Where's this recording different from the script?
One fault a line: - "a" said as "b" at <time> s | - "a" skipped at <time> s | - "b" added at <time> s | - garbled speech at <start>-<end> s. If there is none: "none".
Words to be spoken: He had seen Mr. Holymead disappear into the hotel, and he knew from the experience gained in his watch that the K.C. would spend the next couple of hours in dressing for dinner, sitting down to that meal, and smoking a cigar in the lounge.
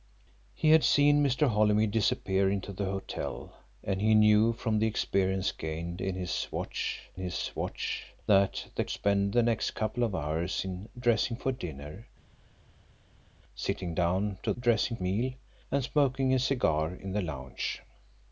- "his watch" added at 7.2 s
- "K.C would" skipped at 8.8 s
- "that" said as "dressing" at 14.6 s